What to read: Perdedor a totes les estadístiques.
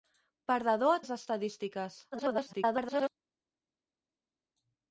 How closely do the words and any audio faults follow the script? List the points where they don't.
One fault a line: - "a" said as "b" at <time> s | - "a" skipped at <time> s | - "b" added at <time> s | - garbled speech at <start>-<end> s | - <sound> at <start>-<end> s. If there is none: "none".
- "totes" skipped at 1.0 s
- garbled speech at 2.1-3.1 s